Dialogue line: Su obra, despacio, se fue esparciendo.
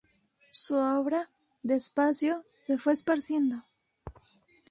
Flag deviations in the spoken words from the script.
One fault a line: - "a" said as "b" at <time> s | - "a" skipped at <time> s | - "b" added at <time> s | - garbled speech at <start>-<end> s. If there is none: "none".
none